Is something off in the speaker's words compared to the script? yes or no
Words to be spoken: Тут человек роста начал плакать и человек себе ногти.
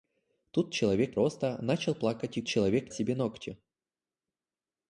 no